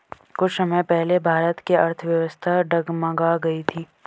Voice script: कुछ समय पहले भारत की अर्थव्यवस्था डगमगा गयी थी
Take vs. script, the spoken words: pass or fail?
pass